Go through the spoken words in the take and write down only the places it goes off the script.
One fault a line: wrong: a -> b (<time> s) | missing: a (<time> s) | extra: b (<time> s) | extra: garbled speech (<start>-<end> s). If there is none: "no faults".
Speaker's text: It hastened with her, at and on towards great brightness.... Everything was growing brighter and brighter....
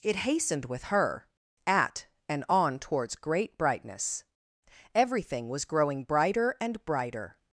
no faults